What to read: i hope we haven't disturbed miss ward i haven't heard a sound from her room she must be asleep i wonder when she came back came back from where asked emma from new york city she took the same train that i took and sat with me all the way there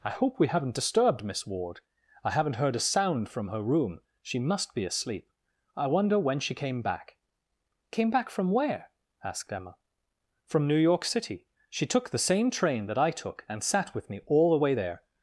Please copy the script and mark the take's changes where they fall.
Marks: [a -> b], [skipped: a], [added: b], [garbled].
i hope we haven't disturbed miss ward i haven't heard a sound from her room she must be asleep i wonder when she came back came back from where asked emma from new york city she took the same train that i took and sat with me all the way there